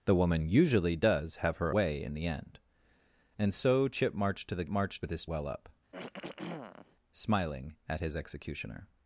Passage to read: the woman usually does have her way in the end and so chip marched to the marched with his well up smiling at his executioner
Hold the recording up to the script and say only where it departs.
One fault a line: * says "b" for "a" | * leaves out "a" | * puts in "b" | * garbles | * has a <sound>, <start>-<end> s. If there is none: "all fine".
* has a throat clearing, 5.9-7.0 s